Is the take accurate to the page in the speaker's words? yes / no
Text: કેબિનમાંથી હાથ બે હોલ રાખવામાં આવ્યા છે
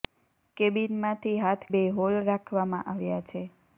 yes